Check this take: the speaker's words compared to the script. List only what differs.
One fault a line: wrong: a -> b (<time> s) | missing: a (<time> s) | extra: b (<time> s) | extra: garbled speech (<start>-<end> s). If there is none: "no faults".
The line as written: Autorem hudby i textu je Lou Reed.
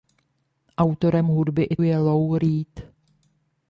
missing: textu (1.8 s)